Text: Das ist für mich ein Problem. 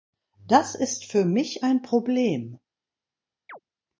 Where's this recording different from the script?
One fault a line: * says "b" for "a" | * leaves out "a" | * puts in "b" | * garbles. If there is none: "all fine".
all fine